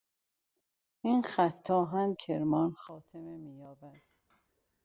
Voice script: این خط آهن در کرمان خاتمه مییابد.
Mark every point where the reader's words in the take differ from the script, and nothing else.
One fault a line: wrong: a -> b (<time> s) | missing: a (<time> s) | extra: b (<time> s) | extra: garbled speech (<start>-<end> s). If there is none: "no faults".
missing: در (2.1 s)